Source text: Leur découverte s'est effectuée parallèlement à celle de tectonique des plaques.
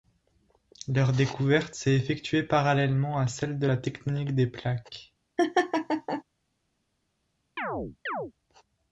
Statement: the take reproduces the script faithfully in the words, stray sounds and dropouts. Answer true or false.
false